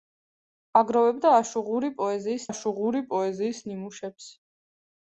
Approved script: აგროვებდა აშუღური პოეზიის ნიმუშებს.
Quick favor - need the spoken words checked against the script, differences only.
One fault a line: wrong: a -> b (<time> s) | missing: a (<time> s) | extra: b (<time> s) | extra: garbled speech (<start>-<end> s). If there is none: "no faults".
extra: აშუღური პოეზიის (2.5 s)